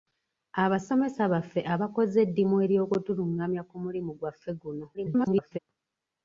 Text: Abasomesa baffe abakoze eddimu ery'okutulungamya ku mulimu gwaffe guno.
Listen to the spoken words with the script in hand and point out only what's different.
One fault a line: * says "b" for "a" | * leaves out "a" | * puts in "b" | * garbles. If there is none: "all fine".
* garbles